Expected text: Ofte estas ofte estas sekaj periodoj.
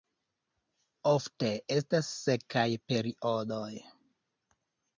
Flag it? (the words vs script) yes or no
yes